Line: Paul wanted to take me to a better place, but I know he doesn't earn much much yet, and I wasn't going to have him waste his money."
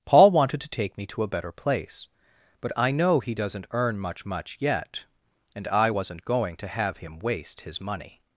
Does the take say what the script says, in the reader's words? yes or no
yes